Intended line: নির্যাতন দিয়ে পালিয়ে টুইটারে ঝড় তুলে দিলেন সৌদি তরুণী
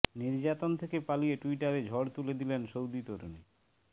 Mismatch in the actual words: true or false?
true